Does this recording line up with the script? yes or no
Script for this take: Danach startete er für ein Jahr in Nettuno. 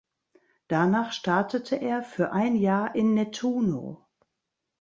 yes